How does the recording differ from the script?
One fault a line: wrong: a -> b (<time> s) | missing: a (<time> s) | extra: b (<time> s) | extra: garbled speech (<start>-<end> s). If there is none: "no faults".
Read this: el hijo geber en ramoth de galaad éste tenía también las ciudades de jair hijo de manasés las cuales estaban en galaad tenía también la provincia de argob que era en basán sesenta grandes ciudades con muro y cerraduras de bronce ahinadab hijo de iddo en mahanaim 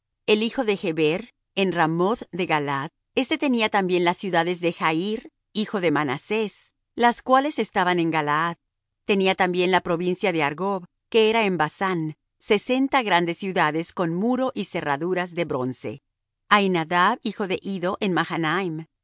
extra: de (0.6 s)